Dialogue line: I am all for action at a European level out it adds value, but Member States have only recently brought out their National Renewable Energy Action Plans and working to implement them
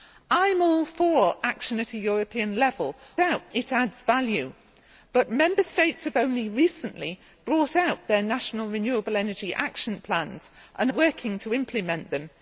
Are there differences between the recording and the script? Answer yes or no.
no